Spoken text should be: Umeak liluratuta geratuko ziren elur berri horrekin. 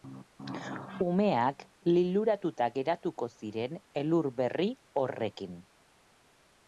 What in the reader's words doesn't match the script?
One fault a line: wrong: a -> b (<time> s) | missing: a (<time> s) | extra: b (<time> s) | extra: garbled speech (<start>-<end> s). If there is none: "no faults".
no faults